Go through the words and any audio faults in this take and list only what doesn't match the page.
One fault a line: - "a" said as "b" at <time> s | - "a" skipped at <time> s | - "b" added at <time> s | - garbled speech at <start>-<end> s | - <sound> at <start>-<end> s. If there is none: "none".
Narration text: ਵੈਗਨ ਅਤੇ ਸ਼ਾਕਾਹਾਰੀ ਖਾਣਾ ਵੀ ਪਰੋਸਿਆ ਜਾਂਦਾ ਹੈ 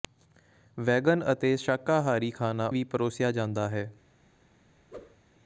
- whoosh at 4.9-5.2 s